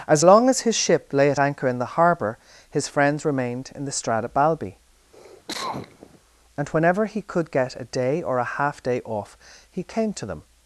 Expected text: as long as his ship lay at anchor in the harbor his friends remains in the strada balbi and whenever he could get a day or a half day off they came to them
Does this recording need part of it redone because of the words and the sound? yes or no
yes